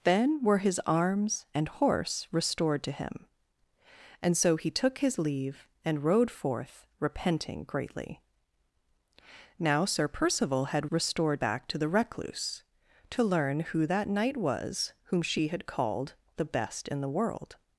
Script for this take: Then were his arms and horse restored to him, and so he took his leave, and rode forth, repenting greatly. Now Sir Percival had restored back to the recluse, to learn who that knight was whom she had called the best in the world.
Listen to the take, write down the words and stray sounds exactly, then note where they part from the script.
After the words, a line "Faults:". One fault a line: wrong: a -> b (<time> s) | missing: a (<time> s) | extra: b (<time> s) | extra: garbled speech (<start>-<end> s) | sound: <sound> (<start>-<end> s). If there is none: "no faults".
Then were his arms and horse restored to him, and so he took his leave, and rode forth, repenting greatly. Now Sir Percival had restored back to the recluse, to learn who that knight was whom she had called the best in the world.
Faults:
no faults